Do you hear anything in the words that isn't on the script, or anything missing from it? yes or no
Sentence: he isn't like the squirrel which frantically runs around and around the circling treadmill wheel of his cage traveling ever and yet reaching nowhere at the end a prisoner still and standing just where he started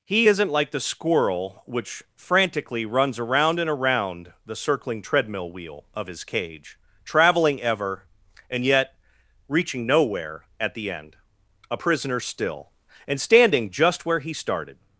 no